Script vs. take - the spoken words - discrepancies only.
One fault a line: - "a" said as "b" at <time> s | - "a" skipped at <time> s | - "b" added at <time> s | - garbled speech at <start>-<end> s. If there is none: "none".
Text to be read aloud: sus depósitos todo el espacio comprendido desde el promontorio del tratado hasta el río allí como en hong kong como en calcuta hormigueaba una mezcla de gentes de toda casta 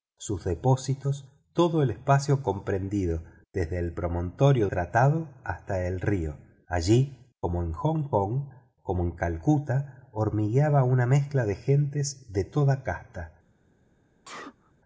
- "del" skipped at 4.7 s